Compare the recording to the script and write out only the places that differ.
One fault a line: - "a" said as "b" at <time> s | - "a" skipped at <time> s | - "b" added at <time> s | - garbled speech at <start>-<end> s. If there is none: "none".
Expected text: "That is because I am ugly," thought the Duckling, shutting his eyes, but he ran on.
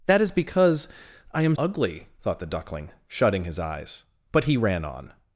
none